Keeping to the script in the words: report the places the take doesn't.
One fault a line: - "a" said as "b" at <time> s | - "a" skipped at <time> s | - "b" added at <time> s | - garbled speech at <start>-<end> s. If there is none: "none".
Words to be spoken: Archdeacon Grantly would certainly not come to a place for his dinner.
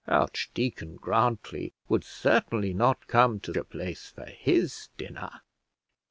none